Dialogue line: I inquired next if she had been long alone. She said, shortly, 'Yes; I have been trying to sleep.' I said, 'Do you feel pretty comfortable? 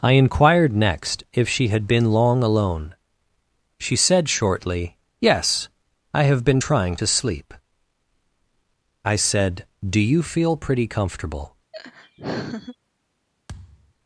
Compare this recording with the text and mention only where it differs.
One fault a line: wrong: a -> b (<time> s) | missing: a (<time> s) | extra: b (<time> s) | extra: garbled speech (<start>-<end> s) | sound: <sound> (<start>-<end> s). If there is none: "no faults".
sound: laugh (11.7-12.8 s)
sound: thud (13.5-13.9 s)